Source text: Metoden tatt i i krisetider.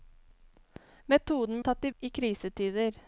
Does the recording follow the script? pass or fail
pass